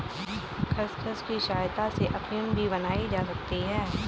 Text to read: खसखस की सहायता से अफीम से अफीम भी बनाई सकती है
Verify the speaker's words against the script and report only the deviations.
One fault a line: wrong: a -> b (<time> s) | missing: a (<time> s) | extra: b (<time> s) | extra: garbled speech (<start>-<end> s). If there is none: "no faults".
missing: से अफीम (2.5 s)
extra: जा (3.1 s)